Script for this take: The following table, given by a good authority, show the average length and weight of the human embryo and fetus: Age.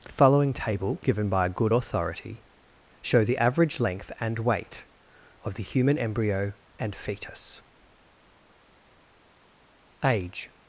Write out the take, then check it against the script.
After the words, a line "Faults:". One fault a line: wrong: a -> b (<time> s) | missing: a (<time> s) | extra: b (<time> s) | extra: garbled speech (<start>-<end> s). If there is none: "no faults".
The following table, given by a good authority, show the average length and weight of the human embryo and fetus: Age.
Faults:
no faults